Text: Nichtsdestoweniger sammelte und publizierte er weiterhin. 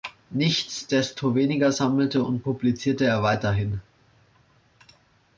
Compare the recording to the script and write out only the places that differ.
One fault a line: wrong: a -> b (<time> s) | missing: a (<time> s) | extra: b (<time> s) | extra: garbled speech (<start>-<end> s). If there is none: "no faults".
no faults